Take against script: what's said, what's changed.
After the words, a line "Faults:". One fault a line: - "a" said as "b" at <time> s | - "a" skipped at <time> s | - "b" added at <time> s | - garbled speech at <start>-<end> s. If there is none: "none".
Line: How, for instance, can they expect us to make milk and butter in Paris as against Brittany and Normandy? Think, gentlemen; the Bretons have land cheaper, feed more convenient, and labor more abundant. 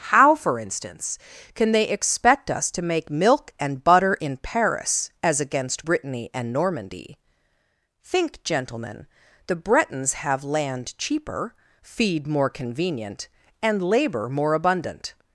How, for instance, can they expect us to make milk and butter in Paris as against Brittany and Normandy? Think, gentlemen; the Bretons have land cheaper, feed more convenient, and labor more abundant.
Faults:
none